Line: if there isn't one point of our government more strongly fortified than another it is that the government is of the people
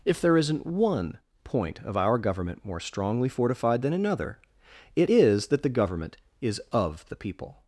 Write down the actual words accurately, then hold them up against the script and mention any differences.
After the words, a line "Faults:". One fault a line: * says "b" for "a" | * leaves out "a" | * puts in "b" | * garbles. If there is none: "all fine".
if there isn't one point of our government more strongly fortified than another it is that the government is of the people
Faults:
all fine